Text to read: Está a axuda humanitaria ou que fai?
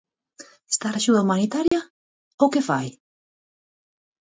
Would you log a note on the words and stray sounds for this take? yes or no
yes